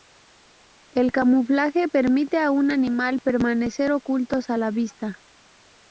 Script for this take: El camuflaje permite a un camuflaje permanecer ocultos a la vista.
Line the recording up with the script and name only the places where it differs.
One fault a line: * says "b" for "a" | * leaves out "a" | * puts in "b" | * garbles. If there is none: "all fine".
* says "animal" for "camuflaje"